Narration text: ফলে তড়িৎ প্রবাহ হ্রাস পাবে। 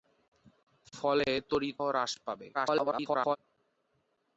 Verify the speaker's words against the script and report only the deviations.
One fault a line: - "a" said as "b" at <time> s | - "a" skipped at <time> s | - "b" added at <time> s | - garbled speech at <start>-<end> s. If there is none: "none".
- "প্রবাহ" skipped at 1.8 s
- garbled speech at 2.5-3.4 s